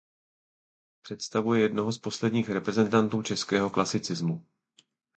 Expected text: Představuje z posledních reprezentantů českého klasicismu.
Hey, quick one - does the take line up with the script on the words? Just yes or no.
no